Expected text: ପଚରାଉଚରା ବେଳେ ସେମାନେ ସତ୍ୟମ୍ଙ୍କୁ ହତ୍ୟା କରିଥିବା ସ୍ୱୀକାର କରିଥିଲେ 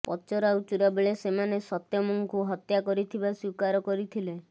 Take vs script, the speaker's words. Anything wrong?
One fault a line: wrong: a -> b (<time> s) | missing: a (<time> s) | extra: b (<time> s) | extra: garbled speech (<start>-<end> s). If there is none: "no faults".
no faults